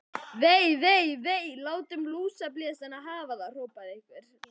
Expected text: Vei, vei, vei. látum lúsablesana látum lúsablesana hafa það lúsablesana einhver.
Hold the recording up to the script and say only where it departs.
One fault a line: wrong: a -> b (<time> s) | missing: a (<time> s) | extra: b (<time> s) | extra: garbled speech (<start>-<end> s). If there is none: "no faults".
missing: látum lúsablesana (3.0 s)
wrong: lúsablesana -> hrópaði (3.6 s)